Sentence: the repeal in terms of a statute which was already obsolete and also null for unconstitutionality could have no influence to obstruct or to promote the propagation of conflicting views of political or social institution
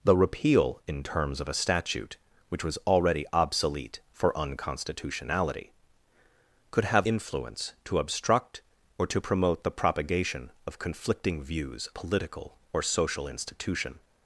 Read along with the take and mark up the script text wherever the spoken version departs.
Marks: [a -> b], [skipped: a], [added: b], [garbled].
the repeal in terms of a statute which was already obsolete [skipped: and also null] for unconstitutionality could have [skipped: no] influence to obstruct or to promote the propagation of conflicting views [skipped: of] political or social institution